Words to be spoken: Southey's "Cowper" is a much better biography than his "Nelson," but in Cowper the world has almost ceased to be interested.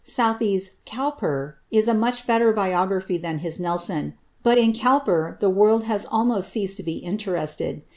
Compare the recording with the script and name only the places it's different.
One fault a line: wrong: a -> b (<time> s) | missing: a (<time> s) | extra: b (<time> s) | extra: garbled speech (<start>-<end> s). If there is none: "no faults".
no faults